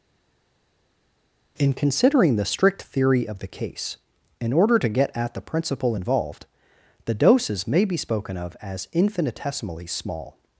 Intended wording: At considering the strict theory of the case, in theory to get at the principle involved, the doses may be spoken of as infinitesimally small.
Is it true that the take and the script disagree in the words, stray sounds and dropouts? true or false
true